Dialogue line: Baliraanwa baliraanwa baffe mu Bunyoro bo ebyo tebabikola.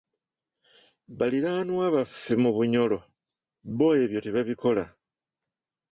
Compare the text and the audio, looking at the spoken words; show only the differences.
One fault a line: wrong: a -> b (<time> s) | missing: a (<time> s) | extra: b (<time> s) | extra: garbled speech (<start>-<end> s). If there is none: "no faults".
missing: baliraanwa (1.9 s)